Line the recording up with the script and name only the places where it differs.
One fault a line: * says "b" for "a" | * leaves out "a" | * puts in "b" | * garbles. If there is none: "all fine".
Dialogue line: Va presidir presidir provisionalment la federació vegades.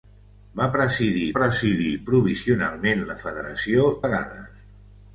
all fine